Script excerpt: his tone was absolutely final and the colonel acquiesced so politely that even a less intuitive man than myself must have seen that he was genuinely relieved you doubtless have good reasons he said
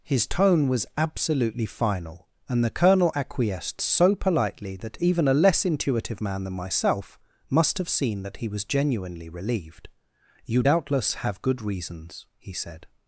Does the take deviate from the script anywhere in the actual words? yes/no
no